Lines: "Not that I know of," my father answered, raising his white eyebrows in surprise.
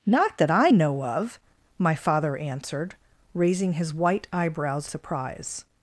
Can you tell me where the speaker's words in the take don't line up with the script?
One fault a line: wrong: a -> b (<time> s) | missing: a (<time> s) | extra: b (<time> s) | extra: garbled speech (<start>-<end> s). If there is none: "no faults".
missing: in (4.9 s)